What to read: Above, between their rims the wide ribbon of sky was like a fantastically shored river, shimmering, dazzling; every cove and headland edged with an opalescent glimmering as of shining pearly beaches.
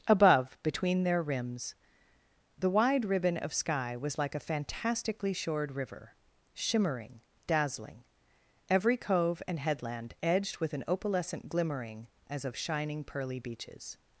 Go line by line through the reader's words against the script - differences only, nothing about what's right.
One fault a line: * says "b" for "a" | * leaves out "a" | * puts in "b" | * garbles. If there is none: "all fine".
all fine